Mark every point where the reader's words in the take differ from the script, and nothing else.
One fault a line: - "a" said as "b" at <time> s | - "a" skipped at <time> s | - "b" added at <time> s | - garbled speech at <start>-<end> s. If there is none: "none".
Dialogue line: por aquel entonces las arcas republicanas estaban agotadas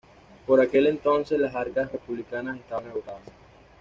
none